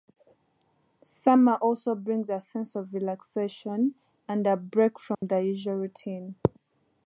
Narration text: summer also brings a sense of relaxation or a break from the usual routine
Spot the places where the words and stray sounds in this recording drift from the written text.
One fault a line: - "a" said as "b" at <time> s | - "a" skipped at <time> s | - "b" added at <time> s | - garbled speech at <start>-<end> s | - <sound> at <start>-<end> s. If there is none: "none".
- "or" said as "and" at 4.3 s
- dropout at 5.1-5.2 s